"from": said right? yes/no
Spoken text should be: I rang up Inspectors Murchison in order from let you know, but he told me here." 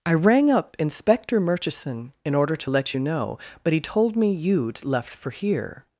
no